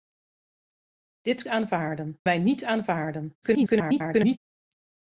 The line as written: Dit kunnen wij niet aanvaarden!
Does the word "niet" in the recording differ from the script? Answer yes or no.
no